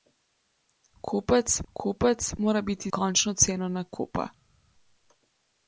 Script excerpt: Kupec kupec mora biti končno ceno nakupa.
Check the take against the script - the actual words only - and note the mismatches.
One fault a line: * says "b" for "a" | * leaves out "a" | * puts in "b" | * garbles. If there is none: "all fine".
all fine